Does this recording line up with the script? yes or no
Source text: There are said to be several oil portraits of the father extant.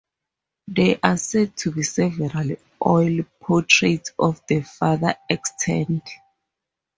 yes